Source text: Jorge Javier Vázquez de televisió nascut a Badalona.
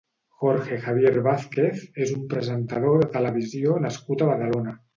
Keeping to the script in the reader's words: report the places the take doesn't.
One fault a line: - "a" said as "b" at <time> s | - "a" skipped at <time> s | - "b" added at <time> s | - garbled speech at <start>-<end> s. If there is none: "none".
- "és un presentador" added at 2.0 s